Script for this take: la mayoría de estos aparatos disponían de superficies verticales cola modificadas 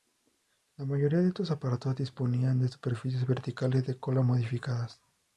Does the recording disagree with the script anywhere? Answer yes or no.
yes